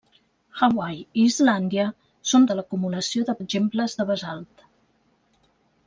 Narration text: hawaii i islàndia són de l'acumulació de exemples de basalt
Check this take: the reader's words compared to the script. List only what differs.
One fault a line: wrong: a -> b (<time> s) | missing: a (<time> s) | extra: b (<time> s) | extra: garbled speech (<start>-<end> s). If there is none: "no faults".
no faults